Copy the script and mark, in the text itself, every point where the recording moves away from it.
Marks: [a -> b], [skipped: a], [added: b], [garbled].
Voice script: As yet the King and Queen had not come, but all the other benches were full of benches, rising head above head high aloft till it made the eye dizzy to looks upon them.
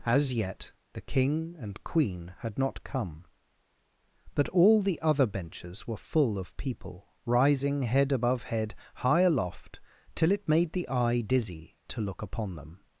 As yet the King and Queen had not come, but all the other benches were full of [benches, -> people] rising head above head high aloft till it made the eye dizzy to [looks -> look] upon them.